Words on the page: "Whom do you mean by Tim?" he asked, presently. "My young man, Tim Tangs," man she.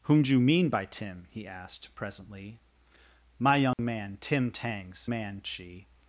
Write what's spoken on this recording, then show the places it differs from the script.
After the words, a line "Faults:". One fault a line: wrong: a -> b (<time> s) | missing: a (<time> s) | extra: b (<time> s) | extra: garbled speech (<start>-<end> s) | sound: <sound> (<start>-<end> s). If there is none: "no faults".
"Whom do you mean by Tim?" he asked, presently. "My young man, Tim Tangs," man she.
Faults:
sound: dropout (3.7-3.8 s)